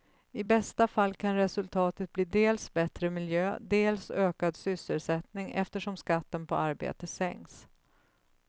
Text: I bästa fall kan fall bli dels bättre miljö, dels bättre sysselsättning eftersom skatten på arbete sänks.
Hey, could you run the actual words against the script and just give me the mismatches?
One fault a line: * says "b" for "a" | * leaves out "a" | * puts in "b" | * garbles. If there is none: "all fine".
* says "resultatet" for "fall"
* says "ökad" for "bättre"